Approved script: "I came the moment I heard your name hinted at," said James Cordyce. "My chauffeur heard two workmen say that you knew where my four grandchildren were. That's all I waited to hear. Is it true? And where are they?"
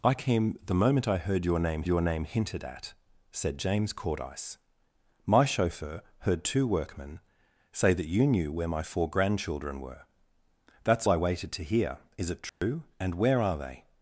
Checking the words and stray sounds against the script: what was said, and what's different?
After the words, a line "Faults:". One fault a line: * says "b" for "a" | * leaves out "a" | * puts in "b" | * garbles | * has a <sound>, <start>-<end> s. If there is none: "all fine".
"I came the moment I heard your name your name hinted at," said James Cordyce. "My chauffeur heard two workmen say that you knew where my four grandchildren were. That's I waited to hear. Is it true? And where are they?"
Faults:
* puts in "your name"
* leaves out "all"
* has a dropout, 12.5-12.6 s